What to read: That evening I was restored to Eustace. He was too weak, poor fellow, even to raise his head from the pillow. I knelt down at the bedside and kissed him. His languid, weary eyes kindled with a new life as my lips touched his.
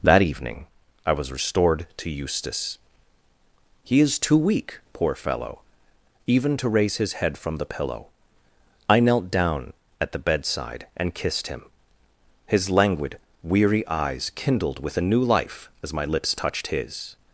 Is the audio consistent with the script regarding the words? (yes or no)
no